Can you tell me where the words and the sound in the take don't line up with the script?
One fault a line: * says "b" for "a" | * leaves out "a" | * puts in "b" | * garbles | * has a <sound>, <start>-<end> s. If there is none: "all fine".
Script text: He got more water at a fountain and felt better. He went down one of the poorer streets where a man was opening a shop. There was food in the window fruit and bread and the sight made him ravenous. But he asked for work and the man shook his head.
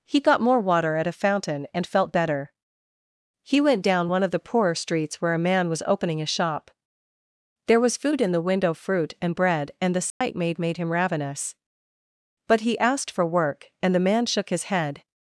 * has a dropout, 10.1-10.2 s
* puts in "made"